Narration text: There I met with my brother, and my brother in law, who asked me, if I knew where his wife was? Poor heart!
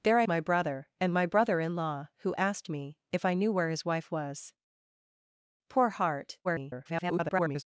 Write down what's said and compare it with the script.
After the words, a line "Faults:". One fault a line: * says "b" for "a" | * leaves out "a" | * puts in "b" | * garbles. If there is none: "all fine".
There I my brother, and my brother in law, who asked me, if I knew where his wife was? Poor heart! [garbled]
Faults:
* leaves out "met with"
* garbles